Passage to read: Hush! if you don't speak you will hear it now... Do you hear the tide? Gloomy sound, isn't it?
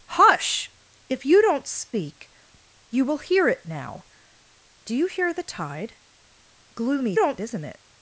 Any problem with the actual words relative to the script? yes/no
yes